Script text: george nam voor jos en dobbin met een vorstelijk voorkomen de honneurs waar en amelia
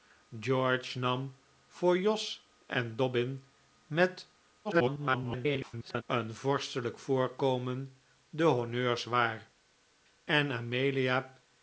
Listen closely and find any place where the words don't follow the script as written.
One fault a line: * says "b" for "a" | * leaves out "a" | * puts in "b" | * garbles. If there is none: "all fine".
* garbles